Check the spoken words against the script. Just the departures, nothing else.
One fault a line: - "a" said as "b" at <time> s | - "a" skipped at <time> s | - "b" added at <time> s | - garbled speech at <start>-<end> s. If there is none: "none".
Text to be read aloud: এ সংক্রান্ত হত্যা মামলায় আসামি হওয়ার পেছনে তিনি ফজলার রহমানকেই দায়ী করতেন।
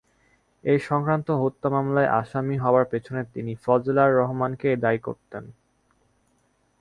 none